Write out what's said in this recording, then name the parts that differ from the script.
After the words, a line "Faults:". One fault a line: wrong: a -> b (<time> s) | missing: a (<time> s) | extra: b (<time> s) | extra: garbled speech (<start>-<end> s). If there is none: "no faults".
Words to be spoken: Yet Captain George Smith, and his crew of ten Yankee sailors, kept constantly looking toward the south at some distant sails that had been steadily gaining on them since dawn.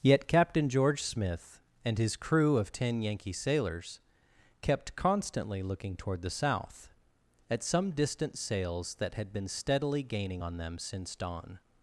Yet Captain George Smith, and his crew of ten Yankee sailors, kept constantly looking toward the south at some distant sails that had been steadily gaining on them since dawn.
Faults:
no faults